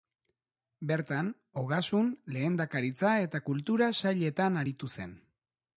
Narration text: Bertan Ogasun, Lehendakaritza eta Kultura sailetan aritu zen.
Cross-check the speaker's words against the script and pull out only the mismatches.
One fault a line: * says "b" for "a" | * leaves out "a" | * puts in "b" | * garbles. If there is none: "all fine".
all fine